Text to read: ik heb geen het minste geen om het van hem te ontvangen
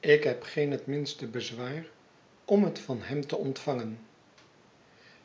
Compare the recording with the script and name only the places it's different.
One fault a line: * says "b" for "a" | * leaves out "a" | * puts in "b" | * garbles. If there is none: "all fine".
* says "bezwaar" for "geen"